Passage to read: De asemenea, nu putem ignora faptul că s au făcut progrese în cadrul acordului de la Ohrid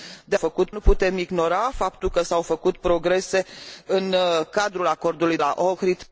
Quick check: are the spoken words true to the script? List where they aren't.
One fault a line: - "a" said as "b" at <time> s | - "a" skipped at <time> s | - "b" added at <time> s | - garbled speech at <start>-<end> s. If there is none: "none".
- "asemenea" said as "făcut" at 0.3 s
- "de" skipped at 5.4 s